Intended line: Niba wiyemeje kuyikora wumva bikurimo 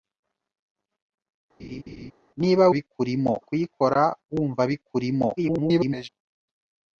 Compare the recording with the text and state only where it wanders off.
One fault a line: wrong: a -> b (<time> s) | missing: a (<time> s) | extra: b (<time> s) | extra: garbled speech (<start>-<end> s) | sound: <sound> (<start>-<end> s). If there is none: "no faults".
sound: laugh (1.6-2.1 s)
wrong: wiyemeje -> bikurimo (2.7 s)
extra: garbled speech (5.4-6.1 s)